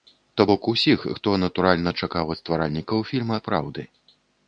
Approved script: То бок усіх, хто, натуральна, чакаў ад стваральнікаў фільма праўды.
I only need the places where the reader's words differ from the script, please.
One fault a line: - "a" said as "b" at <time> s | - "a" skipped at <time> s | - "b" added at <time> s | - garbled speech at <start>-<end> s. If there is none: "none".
none